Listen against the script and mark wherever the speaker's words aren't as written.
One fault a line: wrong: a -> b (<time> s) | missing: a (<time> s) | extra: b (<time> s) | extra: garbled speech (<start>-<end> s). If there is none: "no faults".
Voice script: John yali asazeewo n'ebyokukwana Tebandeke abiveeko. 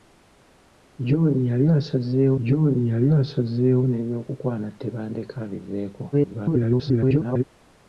extra: john yali asazeewo (2.5 s)
extra: garbled speech (6.1-7.4 s)